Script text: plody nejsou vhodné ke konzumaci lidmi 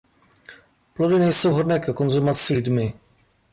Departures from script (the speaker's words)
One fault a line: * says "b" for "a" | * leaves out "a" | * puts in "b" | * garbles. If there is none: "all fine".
all fine